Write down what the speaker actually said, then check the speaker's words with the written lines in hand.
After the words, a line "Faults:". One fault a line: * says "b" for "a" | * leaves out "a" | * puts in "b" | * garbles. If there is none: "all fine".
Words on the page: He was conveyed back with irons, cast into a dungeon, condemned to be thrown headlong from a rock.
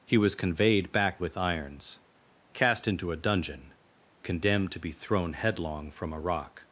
He was conveyed back with irons, cast into a dungeon, condemned to be thrown headlong from a rock.
Faults:
all fine